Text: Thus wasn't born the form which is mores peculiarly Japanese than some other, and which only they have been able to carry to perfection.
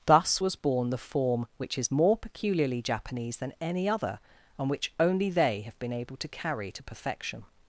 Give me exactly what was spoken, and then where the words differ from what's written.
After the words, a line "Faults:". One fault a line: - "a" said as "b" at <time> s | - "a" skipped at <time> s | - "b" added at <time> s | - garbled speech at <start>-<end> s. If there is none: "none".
Thus was born the form which is more peculiarly Japanese than any other, and which only they have been able to carry to perfection.
Faults:
- "wasn't" said as "was" at 0.4 s
- "mores" said as "more" at 1.9 s
- "some" said as "any" at 3.6 s